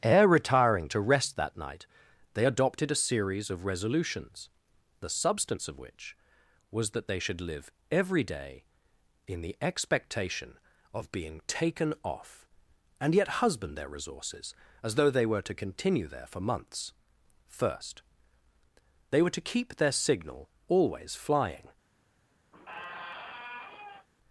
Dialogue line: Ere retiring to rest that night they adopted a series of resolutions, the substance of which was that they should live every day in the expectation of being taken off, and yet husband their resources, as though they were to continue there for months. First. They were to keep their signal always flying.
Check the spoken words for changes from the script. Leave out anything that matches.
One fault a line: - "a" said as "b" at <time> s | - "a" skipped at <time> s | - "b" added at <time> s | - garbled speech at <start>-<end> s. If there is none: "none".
none